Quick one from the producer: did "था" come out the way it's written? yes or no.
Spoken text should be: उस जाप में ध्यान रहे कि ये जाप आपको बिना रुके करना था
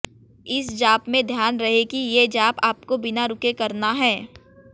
no